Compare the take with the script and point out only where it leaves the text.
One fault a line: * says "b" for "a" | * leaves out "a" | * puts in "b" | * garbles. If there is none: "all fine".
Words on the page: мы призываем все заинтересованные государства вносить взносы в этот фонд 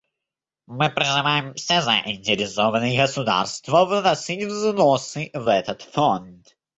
all fine